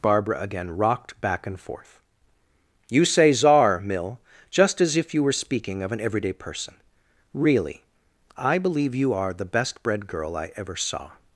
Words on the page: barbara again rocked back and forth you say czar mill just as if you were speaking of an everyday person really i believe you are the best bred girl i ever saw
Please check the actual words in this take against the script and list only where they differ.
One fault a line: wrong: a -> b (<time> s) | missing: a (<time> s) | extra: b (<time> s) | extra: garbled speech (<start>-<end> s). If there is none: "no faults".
no faults